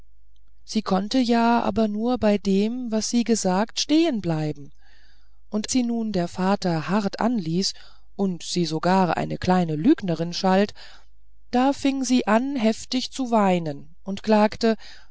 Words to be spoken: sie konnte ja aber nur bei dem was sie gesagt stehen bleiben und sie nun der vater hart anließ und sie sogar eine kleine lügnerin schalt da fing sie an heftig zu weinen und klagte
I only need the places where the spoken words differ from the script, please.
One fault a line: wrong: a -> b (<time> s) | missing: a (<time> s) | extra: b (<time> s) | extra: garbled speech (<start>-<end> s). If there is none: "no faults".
no faults